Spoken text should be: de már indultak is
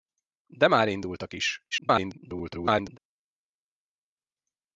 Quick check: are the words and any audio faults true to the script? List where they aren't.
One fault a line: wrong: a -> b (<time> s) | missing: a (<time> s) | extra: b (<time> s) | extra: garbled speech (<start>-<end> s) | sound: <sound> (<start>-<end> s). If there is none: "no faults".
extra: garbled speech (1.7-3.0 s)